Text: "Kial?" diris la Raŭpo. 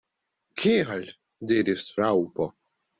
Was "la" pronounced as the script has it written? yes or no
no